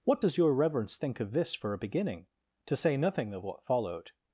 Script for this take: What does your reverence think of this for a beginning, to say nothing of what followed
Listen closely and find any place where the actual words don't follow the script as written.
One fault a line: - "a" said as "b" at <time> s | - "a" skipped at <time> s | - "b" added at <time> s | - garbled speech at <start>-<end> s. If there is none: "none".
none